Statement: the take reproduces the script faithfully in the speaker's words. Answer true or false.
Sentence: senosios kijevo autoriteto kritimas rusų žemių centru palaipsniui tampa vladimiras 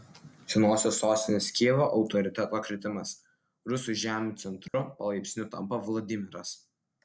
false